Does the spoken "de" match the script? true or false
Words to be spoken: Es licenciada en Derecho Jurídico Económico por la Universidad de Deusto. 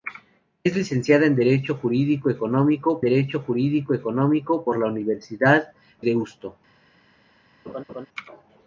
false